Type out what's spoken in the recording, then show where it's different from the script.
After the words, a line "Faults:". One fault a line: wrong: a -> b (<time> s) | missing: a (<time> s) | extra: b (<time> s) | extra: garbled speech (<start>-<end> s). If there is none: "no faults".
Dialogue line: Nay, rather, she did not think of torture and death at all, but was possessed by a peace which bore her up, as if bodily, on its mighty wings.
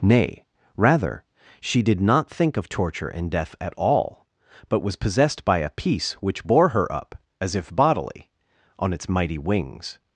Nay, rather, she did not think of torture and death at all, but was possessed by a peace which bore her up, as if bodily, on its mighty wings.
Faults:
no faults